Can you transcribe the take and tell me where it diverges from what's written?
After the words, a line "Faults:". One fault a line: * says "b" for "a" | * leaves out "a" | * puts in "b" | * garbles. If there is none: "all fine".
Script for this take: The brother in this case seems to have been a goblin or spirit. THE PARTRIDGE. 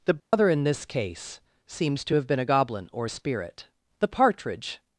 The brother in this case seems to have been a goblin or spirit. THE PARTRIDGE.
Faults:
all fine